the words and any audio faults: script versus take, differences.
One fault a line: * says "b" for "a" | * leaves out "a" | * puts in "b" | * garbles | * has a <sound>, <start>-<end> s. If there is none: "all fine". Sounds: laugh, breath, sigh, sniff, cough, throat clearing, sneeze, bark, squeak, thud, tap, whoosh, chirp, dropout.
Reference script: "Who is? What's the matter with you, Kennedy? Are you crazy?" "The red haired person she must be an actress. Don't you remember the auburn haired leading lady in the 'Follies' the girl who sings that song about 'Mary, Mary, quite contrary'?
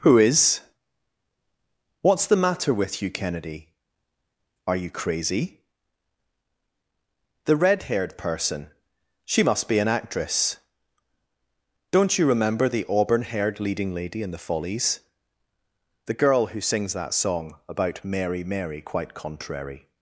all fine